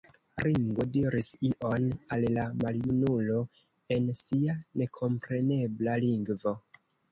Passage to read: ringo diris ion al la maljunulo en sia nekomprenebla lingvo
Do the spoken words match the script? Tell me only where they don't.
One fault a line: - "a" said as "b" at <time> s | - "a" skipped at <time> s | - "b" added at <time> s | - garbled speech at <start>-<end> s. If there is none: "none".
none